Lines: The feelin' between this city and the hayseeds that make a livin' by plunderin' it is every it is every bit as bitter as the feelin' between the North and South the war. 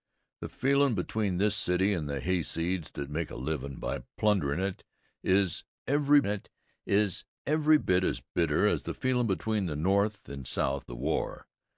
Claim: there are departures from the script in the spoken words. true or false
false